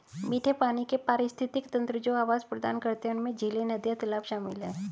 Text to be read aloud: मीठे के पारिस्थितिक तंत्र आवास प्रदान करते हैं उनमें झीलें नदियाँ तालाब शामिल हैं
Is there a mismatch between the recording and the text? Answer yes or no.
yes